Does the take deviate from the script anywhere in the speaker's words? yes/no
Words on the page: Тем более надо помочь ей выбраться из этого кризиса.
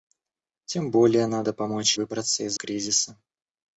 yes